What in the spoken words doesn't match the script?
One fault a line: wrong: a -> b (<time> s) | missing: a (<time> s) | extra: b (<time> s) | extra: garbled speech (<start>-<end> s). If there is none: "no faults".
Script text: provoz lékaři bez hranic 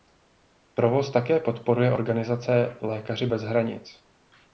extra: také podporuje organizace (1.1 s)